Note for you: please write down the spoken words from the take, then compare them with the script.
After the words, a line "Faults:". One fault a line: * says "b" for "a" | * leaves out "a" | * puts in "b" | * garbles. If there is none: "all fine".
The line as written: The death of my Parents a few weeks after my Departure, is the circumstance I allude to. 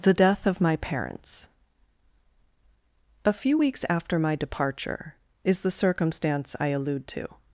The death of my Parents a few weeks after my Departure, is the circumstance I allude to.
Faults:
all fine